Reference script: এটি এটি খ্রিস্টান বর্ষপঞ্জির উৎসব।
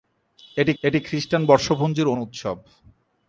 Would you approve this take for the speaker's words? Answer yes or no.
yes